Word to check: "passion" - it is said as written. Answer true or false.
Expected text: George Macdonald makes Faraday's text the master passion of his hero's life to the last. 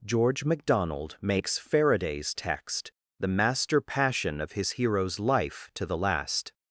true